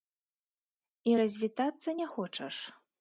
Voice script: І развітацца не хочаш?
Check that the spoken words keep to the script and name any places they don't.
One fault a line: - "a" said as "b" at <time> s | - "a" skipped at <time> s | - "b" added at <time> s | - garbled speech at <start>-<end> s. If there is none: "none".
none